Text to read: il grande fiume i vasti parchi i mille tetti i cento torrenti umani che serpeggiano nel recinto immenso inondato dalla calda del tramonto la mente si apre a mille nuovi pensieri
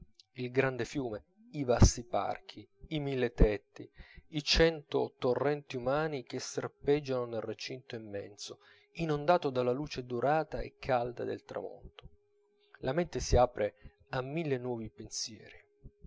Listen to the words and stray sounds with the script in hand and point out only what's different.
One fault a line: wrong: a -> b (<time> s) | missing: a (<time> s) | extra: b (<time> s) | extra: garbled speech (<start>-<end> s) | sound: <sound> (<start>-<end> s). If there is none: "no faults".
extra: luce dorata e (9.7 s)